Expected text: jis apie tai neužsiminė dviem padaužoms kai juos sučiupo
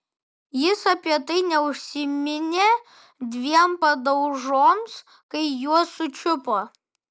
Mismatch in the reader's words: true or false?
false